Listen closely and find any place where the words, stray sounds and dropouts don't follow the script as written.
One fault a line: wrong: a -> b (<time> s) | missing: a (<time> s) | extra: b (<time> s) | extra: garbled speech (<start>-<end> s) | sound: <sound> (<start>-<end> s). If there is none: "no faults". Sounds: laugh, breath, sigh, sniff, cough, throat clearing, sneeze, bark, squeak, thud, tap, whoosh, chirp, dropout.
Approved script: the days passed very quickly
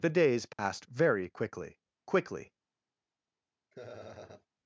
sound: dropout (0.5-0.6 s)
extra: quickly (2.1 s)
sound: laugh (3.7-4.5 s)